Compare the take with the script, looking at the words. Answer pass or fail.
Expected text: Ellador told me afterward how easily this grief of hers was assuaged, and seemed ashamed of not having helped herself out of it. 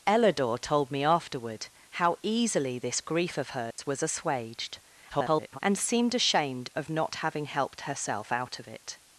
fail